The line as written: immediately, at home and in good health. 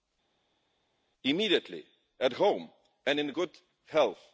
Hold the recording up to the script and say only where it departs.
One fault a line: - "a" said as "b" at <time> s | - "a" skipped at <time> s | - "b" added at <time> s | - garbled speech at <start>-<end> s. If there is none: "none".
none